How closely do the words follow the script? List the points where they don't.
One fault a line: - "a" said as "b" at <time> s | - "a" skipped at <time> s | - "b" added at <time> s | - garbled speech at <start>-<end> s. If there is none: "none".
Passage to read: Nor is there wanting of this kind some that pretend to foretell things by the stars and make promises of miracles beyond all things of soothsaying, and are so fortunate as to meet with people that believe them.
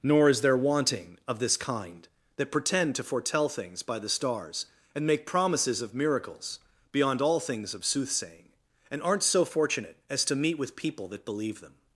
- "some" skipped at 2.1 s
- "are" said as "aren't" at 9.0 s